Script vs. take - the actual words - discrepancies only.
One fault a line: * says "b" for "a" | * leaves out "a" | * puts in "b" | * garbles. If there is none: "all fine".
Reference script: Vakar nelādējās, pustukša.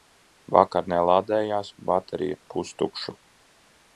* puts in "baterija"